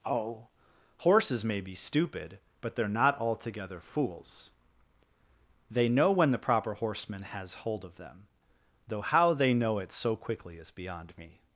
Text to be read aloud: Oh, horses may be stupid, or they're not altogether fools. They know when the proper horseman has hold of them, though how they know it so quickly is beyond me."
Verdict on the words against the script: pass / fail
fail